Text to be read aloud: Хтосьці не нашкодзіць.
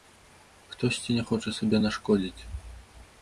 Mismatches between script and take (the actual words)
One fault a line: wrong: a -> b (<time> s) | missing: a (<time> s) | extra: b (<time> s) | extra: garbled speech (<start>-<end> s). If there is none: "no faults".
extra: хоча сабе (1.3 s)